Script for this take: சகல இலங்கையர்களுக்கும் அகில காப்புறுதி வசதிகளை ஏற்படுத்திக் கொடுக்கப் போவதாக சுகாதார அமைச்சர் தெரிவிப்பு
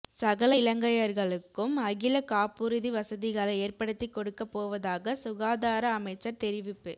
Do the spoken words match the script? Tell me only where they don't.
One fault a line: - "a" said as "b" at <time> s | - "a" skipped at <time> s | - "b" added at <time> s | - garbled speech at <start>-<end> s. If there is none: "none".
none